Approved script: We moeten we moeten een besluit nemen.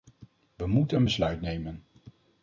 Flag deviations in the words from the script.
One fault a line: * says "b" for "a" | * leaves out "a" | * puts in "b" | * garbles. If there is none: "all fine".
* leaves out "we moeten"